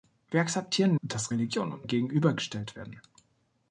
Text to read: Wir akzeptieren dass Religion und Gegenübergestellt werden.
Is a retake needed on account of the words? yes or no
no